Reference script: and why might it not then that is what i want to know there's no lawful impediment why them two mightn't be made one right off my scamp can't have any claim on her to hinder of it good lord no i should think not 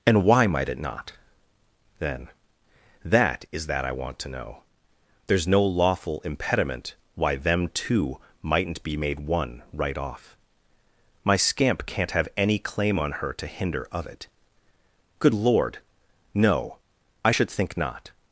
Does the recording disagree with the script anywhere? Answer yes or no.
yes